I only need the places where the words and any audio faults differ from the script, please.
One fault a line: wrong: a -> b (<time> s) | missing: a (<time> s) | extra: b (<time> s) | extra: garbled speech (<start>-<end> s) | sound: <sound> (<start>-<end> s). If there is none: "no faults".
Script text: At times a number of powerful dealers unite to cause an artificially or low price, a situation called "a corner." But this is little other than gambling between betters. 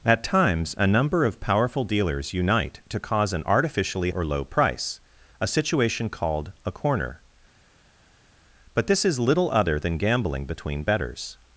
no faults